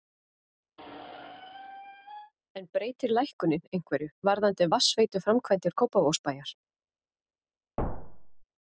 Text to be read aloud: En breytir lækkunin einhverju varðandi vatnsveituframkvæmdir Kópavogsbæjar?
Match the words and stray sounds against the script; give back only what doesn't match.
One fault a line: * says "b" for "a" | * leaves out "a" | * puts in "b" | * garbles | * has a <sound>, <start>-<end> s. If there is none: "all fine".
* has a squeak, 0.8-2.3 s
* has a thud, 7.8-8.4 s